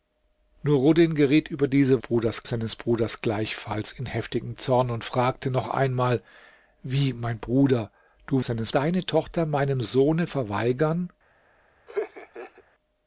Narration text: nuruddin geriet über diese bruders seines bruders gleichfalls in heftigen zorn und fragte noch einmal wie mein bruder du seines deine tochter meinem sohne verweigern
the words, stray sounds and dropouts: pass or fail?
fail